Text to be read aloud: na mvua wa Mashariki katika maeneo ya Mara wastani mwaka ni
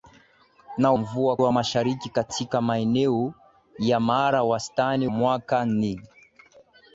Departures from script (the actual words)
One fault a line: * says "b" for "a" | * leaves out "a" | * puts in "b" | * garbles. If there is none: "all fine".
all fine